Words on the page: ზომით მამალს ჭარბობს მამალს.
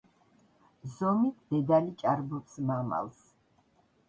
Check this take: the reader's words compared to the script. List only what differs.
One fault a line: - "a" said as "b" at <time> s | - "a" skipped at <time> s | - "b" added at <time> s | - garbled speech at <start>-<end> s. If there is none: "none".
- "მამალს" said as "დედალი" at 1.5 s